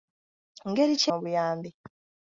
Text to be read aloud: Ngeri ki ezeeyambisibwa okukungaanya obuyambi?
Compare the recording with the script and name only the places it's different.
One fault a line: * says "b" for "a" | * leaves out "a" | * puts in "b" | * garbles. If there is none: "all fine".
* leaves out "ezeeyambisibwa okukungaanya"